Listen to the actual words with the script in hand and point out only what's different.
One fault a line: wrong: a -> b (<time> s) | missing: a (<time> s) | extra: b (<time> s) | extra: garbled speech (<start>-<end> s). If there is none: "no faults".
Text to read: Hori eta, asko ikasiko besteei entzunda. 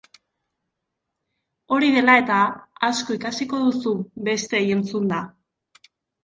extra: dela (1.9 s)
extra: duzu (3.6 s)